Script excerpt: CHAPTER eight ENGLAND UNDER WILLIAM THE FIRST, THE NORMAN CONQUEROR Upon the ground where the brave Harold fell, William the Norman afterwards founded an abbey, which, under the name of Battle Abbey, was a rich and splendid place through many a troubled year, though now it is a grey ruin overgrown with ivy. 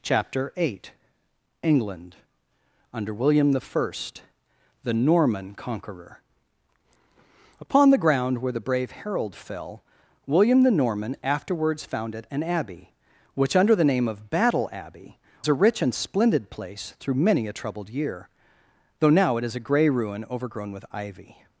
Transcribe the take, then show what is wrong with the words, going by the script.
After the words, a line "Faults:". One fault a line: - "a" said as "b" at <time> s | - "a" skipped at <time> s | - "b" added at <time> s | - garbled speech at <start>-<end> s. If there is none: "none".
CHAPTER eight ENGLAND UNDER WILLIAM THE FIRST, THE NORMAN CONQUEROR Upon the ground where the brave Harold fell, William the Norman afterwards founded an abbey, which, under the name of Battle Abbey, a rich and splendid place through many a troubled year, though now it is a grey ruin overgrown with ivy.
Faults:
- "was" skipped at 15.2 s